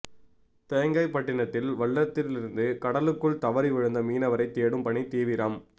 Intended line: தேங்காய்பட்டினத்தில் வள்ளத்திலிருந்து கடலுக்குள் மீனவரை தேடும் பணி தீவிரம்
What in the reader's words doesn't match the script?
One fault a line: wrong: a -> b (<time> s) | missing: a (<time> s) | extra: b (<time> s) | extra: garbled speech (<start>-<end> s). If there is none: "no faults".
extra: தவறி விழுந்த (3.4 s)